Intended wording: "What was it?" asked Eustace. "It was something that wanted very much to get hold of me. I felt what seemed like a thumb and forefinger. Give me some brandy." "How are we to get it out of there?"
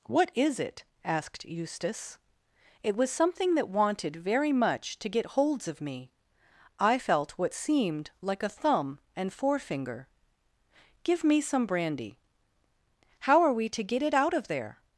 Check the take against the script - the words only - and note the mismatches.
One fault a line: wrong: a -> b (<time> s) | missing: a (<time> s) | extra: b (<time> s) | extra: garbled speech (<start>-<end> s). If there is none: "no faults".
wrong: was -> is (0.3 s)
wrong: hold -> holds (5.4 s)